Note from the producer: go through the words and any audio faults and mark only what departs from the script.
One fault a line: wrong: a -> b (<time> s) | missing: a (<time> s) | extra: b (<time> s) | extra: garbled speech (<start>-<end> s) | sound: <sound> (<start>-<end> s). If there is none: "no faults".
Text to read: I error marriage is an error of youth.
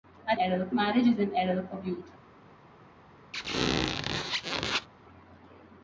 sound: squeak (3.3-4.9 s)